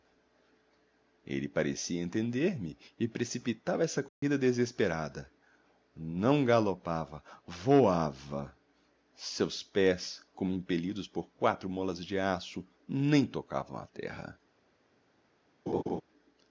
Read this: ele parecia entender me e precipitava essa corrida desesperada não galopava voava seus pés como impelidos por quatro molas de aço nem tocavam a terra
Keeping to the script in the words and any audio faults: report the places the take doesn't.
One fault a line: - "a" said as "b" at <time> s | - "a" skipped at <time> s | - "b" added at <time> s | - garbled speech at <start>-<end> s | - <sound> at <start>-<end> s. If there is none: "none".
- dropout at 4.1-4.2 s
- laugh at 15.7-16.0 s